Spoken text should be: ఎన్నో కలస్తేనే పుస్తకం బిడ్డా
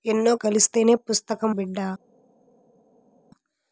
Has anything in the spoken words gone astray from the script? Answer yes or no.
no